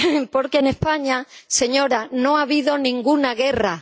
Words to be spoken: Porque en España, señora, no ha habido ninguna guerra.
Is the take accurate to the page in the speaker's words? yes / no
yes